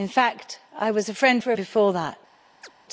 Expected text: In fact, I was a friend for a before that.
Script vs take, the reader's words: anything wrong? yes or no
no